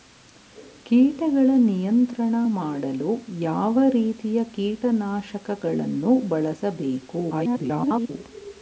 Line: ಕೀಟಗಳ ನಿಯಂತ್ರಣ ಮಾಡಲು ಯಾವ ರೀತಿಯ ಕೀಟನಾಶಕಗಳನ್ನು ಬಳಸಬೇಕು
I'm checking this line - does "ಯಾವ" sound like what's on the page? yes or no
yes